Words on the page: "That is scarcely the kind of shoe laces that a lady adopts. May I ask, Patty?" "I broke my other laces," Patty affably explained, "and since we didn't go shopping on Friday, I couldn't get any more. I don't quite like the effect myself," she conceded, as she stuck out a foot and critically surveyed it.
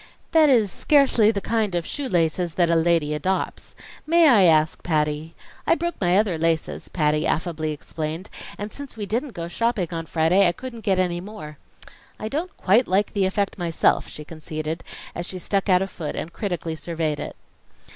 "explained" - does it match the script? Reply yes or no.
yes